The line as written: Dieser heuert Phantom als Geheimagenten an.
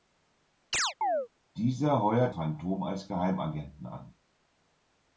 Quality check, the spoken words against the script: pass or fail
pass